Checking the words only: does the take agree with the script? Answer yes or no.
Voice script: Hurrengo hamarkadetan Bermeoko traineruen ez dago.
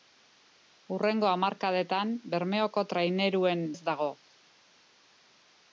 yes